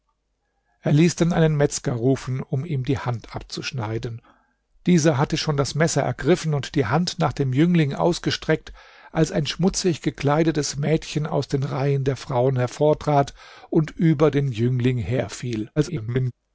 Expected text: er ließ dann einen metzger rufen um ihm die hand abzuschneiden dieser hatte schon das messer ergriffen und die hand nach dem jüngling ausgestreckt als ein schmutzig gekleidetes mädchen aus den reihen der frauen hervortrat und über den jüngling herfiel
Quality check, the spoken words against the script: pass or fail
fail